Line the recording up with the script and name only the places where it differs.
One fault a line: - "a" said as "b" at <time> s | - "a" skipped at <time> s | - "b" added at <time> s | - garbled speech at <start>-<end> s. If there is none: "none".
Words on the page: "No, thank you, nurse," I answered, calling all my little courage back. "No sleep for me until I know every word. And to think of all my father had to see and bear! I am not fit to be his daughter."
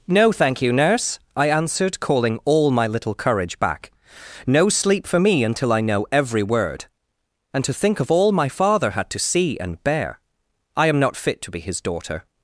none